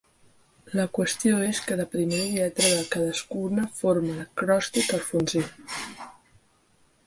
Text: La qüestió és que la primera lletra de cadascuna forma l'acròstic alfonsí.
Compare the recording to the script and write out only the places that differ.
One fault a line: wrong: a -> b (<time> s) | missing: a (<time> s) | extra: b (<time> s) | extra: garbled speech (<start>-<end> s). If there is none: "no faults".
no faults